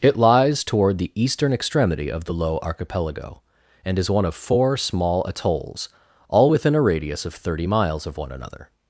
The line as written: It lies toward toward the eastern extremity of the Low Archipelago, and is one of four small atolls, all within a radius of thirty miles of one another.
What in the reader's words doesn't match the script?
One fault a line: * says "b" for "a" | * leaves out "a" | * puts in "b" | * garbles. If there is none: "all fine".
* leaves out "toward"